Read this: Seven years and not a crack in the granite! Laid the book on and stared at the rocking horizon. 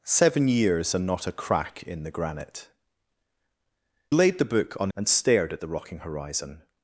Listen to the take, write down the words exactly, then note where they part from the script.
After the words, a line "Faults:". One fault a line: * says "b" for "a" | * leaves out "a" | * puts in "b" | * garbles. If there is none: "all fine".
Seven years and not a crack in the granite! Laid the book on and stared at the rocking horizon.
Faults:
all fine